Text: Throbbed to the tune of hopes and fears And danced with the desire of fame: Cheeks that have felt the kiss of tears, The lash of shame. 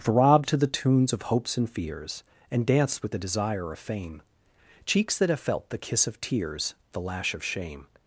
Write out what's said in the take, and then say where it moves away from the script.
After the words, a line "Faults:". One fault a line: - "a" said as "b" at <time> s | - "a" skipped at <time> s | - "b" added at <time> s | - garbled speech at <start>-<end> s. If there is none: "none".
Throbbed to the tunes of hopes and fears And danced with the desire of fame: Cheeks that have felt the kiss of tears, The lash of shame.
Faults:
- "tune" said as "tunes" at 0.7 s